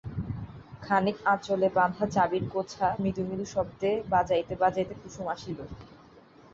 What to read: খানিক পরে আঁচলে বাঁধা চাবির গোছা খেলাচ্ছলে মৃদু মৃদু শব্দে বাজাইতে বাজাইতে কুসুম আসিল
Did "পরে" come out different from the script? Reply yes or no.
yes